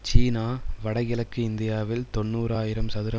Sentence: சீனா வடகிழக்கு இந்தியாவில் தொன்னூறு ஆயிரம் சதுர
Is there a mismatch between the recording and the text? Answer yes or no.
no